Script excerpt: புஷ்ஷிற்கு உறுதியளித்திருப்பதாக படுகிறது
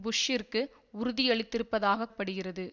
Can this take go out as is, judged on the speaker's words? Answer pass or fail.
pass